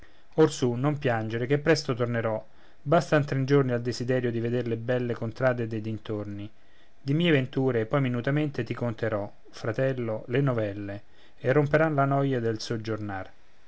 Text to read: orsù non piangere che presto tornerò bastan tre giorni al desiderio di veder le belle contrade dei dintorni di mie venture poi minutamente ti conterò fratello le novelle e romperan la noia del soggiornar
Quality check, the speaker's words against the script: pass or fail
pass